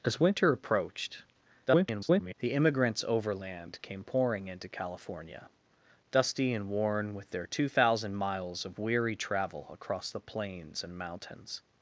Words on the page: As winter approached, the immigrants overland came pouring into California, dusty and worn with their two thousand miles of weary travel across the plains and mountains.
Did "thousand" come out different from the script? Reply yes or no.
no